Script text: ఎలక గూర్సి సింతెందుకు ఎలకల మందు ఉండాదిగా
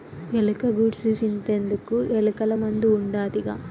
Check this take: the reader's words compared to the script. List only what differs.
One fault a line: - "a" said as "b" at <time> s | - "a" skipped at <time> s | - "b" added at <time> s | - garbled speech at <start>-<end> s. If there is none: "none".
none